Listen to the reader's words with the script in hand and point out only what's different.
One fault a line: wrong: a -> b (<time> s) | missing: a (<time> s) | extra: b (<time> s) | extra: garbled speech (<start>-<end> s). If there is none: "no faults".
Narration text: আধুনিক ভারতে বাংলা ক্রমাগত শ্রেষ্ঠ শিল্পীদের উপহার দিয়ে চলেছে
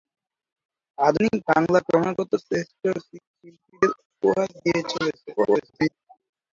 missing: ভারতে (1.4 s)
extra: garbled speech (5.4-5.9 s)